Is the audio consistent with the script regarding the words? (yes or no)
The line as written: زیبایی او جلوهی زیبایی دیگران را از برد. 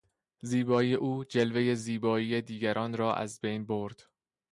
no